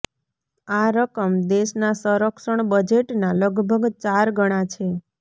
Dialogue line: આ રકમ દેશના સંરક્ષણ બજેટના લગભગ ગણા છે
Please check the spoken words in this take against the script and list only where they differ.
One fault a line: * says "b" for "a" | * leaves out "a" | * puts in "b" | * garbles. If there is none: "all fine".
* puts in "ચાર"